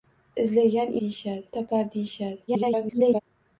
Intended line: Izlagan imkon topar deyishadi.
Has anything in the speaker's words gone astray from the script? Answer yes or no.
yes